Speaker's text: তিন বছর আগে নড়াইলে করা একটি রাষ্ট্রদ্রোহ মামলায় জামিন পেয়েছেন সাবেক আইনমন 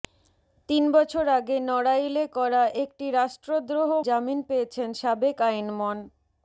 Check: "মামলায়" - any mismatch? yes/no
yes